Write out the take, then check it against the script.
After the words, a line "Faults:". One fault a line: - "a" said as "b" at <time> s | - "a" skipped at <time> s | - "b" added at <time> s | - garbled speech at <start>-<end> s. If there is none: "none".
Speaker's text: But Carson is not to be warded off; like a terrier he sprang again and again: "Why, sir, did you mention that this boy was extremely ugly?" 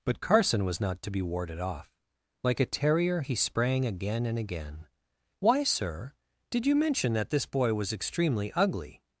But Carson was not to be warded off; like a terrier he sprang again and again: "Why, sir, did you mention that this boy was extremely ugly?"
Faults:
- "is" said as "was" at 0.7 s